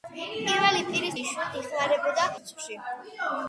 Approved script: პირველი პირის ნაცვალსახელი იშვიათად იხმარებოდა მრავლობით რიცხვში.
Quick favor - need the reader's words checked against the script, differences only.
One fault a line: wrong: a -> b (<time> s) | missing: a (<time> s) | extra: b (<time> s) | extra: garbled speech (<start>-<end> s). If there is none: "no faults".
missing: ნაცვალსახელი (1.2 s)
missing: მრავლობით (2.3 s)